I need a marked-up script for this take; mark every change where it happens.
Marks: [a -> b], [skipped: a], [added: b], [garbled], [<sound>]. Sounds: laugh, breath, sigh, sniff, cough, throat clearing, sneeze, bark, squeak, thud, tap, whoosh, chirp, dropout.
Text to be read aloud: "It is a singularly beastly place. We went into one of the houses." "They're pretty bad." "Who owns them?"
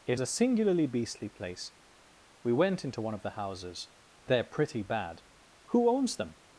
"It [skipped: is] a singularly beastly place. We went into one of the houses." "They're pretty bad." "Who owns them?"